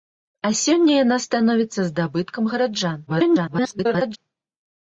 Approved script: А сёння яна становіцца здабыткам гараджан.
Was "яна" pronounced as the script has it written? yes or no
yes